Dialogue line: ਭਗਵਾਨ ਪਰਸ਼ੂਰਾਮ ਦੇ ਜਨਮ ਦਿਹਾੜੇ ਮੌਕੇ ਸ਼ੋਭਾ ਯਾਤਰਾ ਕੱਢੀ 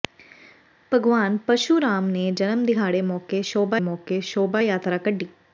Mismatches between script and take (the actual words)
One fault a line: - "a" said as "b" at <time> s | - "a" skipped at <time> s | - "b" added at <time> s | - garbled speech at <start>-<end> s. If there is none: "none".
- "ਮੌਕੇ ਸ਼ੋਭਾ" added at 3.8 s